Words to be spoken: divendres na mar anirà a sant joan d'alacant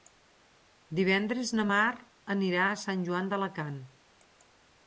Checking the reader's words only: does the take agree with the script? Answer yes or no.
yes